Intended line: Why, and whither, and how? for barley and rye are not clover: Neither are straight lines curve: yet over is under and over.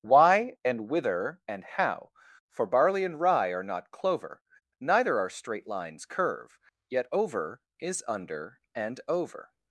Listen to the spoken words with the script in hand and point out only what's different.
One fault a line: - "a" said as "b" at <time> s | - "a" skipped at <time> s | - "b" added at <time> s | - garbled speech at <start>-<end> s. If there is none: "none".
none